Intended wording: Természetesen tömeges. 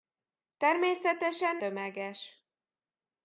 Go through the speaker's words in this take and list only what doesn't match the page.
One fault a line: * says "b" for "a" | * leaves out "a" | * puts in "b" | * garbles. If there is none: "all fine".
all fine